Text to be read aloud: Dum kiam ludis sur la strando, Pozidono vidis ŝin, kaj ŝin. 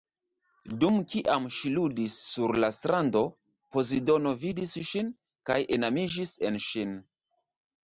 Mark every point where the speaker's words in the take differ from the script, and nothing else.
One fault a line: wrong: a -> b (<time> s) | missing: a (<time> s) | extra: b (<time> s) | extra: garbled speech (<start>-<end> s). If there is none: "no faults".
extra: ŝi (1.6 s)
extra: enamiĝis en (5.8 s)